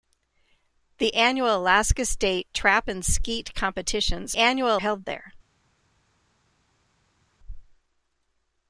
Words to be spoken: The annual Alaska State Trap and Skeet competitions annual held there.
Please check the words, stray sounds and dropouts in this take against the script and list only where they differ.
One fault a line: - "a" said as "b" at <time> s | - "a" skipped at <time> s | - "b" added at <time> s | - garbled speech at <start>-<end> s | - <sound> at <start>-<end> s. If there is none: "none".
none